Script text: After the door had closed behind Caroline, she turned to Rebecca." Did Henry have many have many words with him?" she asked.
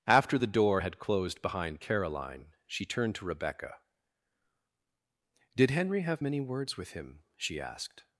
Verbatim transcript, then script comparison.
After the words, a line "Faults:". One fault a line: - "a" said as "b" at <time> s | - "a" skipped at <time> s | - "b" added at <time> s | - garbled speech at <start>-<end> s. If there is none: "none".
After the door had closed behind Caroline, she turned to Rebecca." Did Henry have many words with him?" she asked.
Faults:
- "have many" skipped at 6.4 s